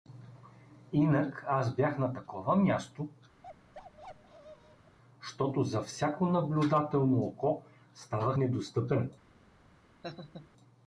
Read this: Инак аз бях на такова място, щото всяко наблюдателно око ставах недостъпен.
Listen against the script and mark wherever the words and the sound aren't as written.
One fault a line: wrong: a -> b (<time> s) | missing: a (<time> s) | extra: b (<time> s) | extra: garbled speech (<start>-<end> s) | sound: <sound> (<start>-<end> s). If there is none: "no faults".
sound: bark (3.4-5.0 s)
extra: за (5.6 s)
sound: laugh (10.0-10.5 s)